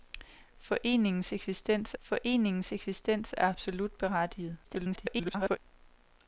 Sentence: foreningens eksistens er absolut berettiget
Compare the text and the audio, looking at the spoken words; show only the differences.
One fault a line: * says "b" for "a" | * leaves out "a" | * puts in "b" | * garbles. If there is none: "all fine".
* puts in "foreningens eksistens"
* garbles